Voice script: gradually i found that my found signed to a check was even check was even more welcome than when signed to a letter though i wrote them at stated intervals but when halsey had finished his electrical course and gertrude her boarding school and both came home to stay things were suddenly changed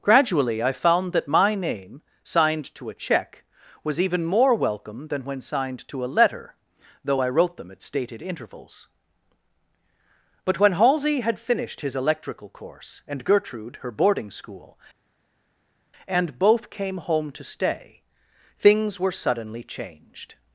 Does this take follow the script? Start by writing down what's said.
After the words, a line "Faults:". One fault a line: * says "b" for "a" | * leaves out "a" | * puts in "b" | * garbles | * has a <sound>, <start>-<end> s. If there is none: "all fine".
gradually i found that my name signed to a check was even more welcome than when signed to a letter though i wrote them at stated intervals but when halsey had finished his electrical course and gertrude her boarding school and both came home to stay things were suddenly changed
Faults:
* says "name" for "found"
* leaves out "check was even"